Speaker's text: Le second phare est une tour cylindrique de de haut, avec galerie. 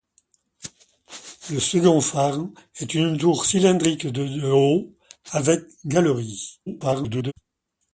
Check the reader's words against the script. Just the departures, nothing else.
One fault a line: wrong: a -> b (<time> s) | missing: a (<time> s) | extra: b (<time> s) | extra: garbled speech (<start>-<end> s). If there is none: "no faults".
extra: garbled speech (6.7-7.3 s)